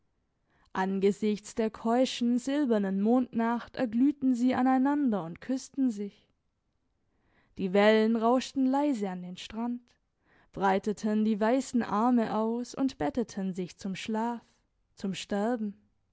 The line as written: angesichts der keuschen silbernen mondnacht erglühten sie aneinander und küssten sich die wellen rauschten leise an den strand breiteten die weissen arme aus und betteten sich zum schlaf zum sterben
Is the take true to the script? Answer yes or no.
yes